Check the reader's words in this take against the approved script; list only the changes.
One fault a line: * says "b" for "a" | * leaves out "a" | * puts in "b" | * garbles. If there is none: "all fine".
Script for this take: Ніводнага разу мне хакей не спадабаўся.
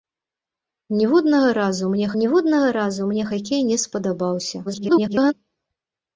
* puts in "ніводнага разу мне"
* garbles